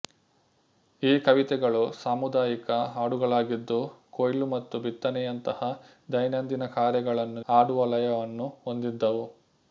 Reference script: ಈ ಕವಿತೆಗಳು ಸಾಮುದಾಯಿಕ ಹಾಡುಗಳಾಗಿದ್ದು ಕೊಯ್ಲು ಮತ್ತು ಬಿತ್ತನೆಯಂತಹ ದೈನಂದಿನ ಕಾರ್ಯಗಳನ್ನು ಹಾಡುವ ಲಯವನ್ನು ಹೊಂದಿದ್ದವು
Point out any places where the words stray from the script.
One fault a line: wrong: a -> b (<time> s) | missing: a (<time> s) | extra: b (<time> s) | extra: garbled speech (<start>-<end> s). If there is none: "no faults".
no faults